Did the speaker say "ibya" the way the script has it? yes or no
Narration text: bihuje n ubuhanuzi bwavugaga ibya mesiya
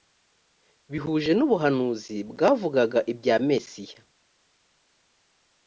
yes